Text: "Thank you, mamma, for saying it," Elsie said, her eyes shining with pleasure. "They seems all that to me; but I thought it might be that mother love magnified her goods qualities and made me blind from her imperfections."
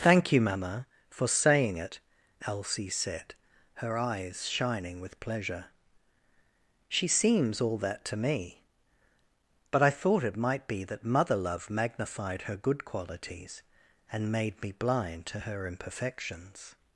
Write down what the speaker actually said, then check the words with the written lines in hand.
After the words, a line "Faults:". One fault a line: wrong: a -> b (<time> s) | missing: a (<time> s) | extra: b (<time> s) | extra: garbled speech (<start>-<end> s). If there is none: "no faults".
"Thank you, mamma, for saying it," Elsie said, her eyes shining with pleasure. "She seems all that to me; but I thought it might be that mother love magnified her good qualities and made me blind to her imperfections."
Faults:
wrong: They -> She (6.9 s)
wrong: goods -> good (12.6 s)
wrong: from -> to (15.3 s)